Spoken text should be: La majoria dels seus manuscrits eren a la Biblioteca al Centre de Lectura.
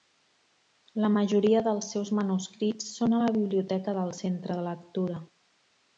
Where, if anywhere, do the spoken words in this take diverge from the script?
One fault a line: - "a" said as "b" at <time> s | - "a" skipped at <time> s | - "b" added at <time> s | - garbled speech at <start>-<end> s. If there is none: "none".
- "eren" said as "són" at 3.0 s
- "al" said as "del" at 4.0 s